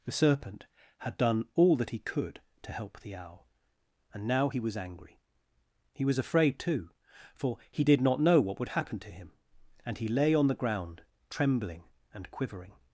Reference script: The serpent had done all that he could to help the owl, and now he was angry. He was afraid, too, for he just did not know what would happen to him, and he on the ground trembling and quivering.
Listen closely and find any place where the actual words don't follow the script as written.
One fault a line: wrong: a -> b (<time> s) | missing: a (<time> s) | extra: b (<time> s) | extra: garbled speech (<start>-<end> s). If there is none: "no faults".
missing: just (7.8 s)
extra: lay (10.1 s)